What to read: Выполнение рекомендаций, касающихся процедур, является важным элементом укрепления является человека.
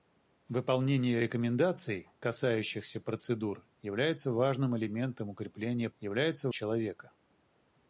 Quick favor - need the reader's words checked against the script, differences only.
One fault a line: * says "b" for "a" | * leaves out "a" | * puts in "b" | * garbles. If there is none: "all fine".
all fine